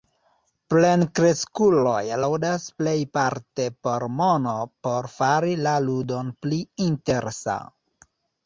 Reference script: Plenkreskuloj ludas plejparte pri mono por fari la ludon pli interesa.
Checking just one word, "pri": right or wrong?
wrong